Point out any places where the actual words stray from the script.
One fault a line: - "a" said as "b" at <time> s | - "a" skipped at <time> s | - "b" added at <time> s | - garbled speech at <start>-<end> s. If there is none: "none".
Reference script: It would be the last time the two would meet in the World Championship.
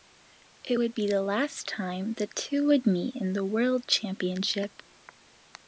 none